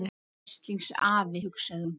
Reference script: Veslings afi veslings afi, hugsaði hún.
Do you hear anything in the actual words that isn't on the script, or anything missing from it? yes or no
yes